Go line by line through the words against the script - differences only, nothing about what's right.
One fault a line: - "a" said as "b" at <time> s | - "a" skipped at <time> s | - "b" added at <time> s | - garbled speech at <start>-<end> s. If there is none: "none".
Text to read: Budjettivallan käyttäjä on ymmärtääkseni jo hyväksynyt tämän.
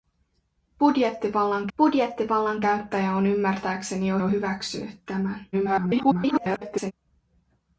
- "budjettivallan" added at 1.8 s
- "jo" added at 4.2 s
- garbled speech at 5.5-6.9 s